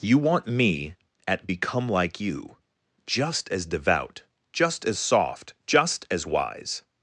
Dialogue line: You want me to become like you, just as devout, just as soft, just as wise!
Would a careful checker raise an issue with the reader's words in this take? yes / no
yes